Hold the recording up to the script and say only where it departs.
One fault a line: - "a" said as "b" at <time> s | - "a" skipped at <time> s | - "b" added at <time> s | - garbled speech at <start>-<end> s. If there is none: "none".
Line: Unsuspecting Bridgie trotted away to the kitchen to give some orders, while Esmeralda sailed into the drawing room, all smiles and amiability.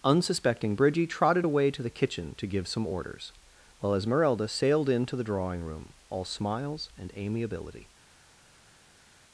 none